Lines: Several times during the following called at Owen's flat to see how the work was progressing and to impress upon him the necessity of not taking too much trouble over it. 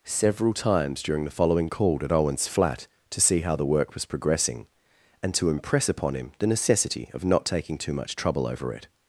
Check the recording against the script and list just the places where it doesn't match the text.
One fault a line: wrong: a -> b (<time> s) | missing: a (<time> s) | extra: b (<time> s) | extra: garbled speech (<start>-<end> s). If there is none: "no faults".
no faults